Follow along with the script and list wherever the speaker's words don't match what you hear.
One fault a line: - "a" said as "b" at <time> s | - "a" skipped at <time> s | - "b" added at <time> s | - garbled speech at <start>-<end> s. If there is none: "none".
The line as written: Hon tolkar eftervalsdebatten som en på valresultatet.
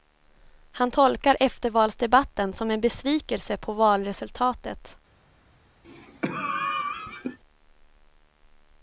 - "Hon" said as "Han" at 0.7 s
- "besvikelse" added at 2.8 s